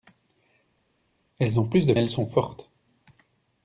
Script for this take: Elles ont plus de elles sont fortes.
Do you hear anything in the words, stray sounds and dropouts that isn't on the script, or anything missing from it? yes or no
no